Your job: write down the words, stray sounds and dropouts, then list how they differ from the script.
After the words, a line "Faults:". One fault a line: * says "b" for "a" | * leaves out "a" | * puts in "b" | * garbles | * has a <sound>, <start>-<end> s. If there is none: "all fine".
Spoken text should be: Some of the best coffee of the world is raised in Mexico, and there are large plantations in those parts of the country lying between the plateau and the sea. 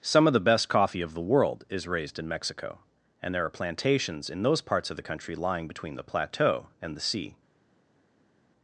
Some of the best coffee of the world is raised in Mexico, and there are plantations in those parts of the country lying between the plateau and the sea.
Faults:
* leaves out "large"